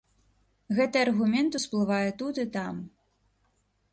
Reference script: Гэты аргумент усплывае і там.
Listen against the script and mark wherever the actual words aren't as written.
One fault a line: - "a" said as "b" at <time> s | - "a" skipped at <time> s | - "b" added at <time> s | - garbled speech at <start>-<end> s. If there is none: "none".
- "тут" added at 2.2 s